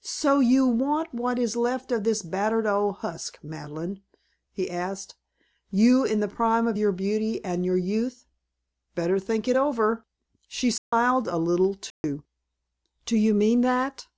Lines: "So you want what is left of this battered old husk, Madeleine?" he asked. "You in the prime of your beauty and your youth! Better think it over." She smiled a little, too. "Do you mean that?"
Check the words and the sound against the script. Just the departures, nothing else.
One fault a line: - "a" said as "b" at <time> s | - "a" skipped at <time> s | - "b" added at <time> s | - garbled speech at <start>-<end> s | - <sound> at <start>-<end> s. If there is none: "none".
- dropout at 10.8-10.9 s
- dropout at 11.9-12.0 s